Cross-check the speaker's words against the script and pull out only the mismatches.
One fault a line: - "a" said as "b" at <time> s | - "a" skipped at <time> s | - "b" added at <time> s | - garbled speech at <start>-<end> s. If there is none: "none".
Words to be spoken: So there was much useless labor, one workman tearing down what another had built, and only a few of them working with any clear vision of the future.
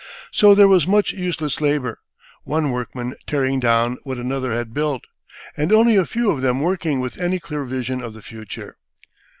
none